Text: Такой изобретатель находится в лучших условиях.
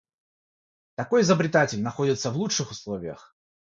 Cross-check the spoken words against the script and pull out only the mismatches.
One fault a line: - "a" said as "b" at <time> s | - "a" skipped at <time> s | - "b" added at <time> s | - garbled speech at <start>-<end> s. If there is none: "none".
none